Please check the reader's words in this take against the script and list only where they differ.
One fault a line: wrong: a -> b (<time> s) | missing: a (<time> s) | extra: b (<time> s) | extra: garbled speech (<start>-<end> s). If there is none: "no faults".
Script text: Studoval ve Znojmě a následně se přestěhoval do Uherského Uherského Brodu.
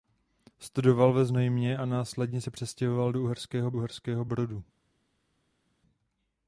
no faults